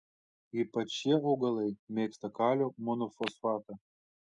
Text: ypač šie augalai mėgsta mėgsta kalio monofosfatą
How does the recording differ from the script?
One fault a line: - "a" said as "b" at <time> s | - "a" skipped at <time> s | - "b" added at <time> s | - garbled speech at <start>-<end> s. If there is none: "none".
- "mėgsta" skipped at 2.4 s